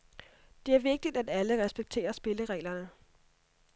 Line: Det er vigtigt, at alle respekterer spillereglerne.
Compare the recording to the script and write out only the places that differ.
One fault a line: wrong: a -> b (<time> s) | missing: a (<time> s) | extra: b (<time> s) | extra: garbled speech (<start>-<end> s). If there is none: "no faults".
no faults